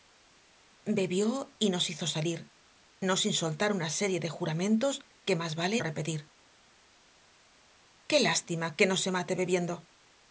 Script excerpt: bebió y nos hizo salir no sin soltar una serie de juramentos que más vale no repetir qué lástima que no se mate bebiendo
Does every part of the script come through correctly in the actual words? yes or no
no